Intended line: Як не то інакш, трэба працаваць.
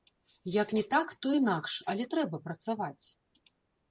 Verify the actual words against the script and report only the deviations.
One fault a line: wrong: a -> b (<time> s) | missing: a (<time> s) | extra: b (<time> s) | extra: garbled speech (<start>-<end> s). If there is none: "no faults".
extra: так (0.9 s)
extra: але (1.9 s)